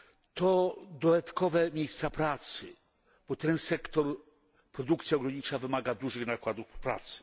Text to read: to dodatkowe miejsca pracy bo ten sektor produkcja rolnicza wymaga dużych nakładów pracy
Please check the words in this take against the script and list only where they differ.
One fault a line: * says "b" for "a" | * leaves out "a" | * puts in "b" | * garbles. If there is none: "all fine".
all fine